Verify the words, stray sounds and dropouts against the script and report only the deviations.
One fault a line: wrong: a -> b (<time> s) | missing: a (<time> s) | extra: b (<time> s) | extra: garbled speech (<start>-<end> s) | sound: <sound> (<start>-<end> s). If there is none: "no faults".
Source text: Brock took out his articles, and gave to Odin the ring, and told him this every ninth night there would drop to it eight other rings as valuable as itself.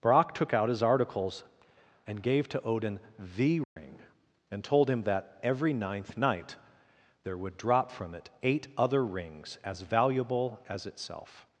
sound: dropout (3.6-3.8 s)
wrong: this -> that (5.0 s)
wrong: to -> from (7.9 s)